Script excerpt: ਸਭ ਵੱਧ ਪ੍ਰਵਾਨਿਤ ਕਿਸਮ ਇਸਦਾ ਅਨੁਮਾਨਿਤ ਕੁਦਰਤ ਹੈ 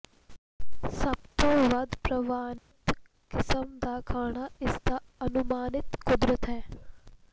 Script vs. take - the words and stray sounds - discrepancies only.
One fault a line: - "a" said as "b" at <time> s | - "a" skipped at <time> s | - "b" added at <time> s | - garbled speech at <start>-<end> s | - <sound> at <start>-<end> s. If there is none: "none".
- "ਤੋਂ" added at 1.4 s
- dropout at 2.6-2.7 s
- "ਦਾ ਖਾਣਾ" added at 3.8 s